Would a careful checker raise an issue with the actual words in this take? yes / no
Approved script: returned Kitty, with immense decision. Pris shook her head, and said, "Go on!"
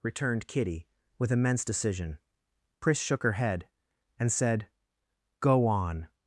no